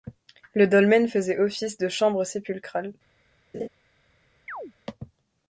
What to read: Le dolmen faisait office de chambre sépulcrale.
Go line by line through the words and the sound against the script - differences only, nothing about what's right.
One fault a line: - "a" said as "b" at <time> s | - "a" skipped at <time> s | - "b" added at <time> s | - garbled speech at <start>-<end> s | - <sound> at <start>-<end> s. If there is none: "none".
- laugh at 3.5-3.7 s
- chirp at 4.5-4.7 s